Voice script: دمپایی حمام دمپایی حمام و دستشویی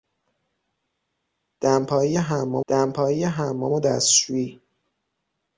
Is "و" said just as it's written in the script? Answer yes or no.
yes